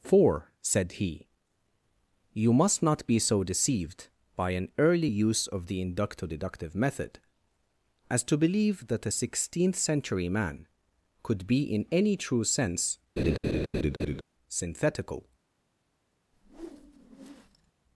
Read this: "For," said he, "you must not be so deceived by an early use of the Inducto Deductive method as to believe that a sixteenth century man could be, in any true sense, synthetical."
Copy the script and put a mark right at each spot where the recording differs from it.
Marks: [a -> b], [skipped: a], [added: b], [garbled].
"For," said he, "you must not be so deceived by an early use of the Inducto Deductive method as to believe that a sixteenth century man could be, in any true sense, synthetical."